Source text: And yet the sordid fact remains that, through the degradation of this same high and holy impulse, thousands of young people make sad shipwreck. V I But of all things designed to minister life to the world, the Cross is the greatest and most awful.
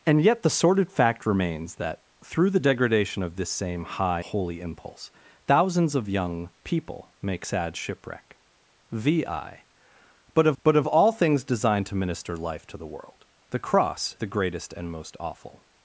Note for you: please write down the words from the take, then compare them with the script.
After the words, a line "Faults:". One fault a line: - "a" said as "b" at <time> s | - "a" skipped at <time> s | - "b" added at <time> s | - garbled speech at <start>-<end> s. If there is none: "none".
And yet the sordid fact remains that, through the degradation of this same high holy impulse, thousands of young people make sad shipwreck. V I But of But of all things designed to minister life to the world, the Cross the greatest and most awful.
Faults:
- "and" skipped at 4.2 s
- "But of" added at 10.6 s
- "is" skipped at 14.2 s